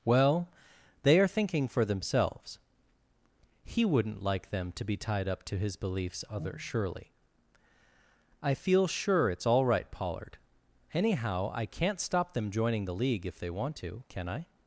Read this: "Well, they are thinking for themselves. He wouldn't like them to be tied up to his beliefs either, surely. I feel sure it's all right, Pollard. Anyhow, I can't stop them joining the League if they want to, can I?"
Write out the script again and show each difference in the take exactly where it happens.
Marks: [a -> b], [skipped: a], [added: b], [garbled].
"Well, they are thinking for themselves. He wouldn't like them to be tied up to his beliefs [either, -> other] surely. I feel sure it's all right, Pollard. Anyhow, I can't stop them joining the League if they want to, can I?"